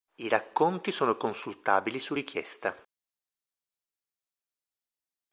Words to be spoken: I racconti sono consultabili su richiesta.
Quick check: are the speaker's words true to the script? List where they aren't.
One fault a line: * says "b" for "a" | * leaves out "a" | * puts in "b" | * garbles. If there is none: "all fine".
all fine